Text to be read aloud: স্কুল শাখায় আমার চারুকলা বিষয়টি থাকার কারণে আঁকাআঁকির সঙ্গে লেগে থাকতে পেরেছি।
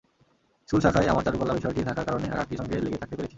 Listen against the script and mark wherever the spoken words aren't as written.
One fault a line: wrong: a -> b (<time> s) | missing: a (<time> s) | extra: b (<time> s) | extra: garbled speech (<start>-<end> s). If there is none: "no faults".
no faults